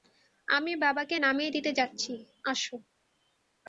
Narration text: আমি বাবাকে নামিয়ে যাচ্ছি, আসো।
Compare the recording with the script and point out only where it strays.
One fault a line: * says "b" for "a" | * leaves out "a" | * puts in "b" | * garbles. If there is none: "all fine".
* puts in "দিতে"